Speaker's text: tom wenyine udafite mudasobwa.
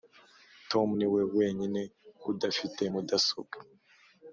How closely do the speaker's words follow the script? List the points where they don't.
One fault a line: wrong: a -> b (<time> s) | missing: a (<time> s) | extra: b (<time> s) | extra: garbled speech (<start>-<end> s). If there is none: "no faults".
extra: niwe (1.0 s)